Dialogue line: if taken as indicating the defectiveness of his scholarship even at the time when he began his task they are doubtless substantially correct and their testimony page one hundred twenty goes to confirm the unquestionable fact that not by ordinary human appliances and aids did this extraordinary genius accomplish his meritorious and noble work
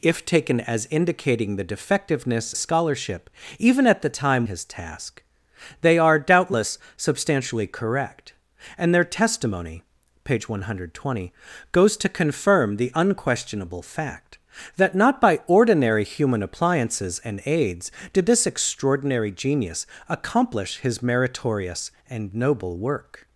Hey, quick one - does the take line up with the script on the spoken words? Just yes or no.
no